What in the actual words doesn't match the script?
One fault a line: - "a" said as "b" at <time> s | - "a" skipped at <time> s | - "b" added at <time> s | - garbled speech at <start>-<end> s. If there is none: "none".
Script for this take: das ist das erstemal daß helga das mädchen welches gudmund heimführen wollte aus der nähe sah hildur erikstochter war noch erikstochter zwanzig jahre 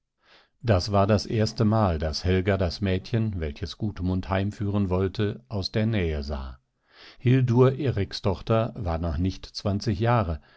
- "ist" said as "war" at 0.9 s
- "erikstochter" said as "nicht" at 9.2 s